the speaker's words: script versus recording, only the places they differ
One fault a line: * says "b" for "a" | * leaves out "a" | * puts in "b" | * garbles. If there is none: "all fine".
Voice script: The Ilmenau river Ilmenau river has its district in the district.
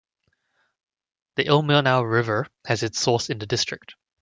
* leaves out "Ilmenau river"
* says "source" for "district"